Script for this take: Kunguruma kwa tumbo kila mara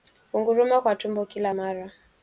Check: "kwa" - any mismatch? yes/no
no